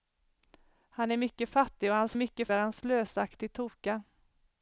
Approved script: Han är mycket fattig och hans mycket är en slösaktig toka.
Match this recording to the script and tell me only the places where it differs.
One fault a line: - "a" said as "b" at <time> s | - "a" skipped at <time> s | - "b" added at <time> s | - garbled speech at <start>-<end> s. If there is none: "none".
none